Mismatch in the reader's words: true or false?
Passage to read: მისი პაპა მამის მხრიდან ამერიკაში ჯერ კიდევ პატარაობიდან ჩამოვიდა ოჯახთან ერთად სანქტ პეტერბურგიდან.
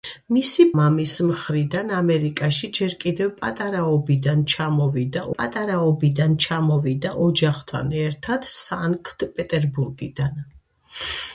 true